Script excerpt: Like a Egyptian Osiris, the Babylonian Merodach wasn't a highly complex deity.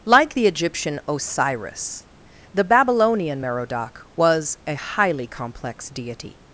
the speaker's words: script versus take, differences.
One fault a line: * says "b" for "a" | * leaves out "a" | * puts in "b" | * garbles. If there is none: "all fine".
* says "the" for "a"
* says "was" for "wasn't"